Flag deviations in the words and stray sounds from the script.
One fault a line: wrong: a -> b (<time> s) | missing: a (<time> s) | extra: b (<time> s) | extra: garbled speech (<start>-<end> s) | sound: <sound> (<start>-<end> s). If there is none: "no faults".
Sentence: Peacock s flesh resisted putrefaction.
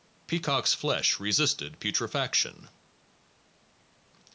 no faults